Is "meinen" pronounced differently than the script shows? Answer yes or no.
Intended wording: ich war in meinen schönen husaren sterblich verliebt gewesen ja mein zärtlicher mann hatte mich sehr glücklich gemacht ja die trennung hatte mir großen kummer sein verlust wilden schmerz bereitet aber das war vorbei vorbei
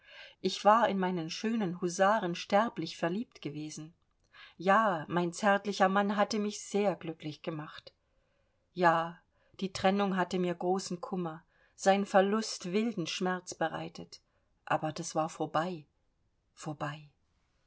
no